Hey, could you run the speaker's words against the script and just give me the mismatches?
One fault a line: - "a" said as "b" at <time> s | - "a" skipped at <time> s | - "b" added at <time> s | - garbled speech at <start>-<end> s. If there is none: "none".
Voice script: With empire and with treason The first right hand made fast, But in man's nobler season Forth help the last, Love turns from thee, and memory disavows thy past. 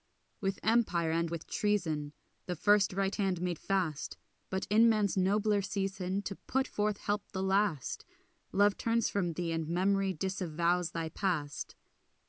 - "To put" added at 6.2 s